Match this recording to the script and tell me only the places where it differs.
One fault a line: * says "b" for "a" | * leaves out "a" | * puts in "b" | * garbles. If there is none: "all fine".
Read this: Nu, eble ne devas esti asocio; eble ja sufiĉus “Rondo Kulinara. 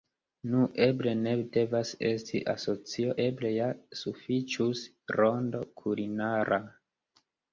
all fine